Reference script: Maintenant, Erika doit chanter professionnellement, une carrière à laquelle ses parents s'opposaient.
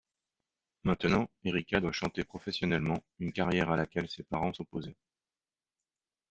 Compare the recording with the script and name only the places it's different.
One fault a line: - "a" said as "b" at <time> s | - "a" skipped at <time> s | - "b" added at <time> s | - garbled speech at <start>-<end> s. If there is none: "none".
none